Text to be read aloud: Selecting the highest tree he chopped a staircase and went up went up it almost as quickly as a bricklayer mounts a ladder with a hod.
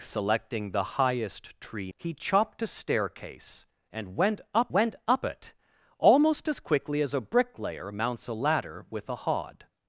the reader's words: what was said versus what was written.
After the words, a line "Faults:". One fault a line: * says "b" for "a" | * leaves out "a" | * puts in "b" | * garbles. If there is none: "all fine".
Selecting the highest tree he chopped a staircase and went up went up it almost as quickly as a bricklayer mounts a ladder with a hod.
Faults:
all fine